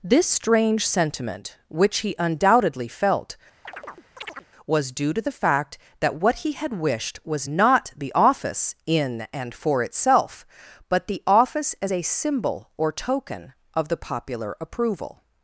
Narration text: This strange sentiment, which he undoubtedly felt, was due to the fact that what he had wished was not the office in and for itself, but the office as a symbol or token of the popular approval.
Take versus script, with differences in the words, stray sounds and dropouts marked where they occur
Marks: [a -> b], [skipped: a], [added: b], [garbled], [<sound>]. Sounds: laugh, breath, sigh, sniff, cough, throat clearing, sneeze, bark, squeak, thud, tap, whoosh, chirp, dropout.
This strange sentiment, which he undoubtedly felt, [chirp] was due to the fact that what he had wished was not the office in and for itself, but the office as a symbol or token of the popular approval.